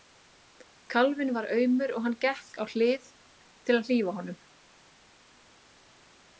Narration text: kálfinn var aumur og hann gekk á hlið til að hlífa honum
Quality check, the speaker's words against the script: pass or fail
pass